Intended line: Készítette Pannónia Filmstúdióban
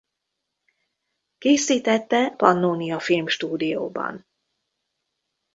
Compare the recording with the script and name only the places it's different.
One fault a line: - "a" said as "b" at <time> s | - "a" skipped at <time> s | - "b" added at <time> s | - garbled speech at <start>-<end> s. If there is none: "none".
none